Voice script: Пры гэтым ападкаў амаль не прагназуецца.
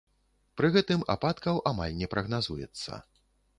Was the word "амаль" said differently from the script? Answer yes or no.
no